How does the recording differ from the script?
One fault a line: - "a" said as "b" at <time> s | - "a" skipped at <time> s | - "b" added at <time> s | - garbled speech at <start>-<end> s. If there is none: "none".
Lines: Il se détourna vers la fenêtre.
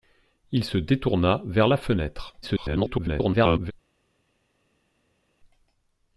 - garbled speech at 2.4-3.7 s